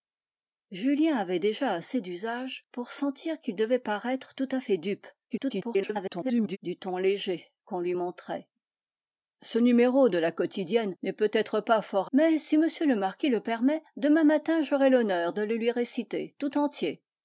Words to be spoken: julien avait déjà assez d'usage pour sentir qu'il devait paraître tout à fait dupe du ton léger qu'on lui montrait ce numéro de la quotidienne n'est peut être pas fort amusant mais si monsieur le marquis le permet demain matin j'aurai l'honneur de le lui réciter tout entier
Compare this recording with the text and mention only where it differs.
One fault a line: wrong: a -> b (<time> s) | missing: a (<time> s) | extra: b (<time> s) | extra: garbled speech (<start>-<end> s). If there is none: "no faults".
extra: garbled speech (5.3-6.6 s)
missing: amusant (12.1 s)